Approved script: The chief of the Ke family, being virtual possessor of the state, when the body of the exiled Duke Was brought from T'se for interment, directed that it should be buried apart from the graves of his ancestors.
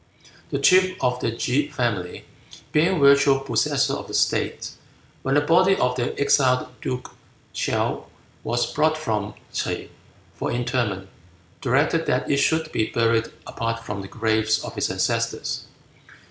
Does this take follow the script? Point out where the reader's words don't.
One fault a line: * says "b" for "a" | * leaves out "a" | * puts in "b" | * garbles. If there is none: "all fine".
* puts in "Chaou"